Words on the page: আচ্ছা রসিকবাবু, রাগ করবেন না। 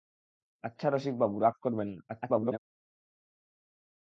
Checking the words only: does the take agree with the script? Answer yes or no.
no